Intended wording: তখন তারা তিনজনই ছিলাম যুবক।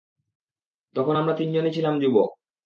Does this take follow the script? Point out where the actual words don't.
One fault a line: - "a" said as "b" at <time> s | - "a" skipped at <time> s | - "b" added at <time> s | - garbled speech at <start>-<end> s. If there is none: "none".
- "তারা" said as "আমরা" at 1.1 s